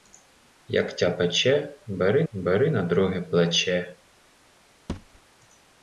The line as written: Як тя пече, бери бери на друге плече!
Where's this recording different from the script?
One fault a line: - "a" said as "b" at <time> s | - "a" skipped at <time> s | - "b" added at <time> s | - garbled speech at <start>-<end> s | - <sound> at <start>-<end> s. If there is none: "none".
- thud at 4.9-5.2 s